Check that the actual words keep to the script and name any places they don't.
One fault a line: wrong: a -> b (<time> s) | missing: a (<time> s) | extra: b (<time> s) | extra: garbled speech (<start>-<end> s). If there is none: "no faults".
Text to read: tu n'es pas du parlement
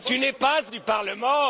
no faults